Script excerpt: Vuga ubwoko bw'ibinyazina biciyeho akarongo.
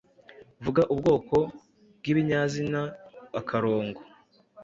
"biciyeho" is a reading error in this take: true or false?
true